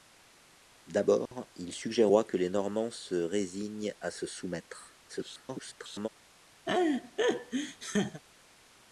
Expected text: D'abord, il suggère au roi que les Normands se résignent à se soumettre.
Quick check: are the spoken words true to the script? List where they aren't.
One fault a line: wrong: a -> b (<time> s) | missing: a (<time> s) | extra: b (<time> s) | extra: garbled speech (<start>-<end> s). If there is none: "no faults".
missing: au (2.1 s)
extra: garbled speech (5.1-6.1 s)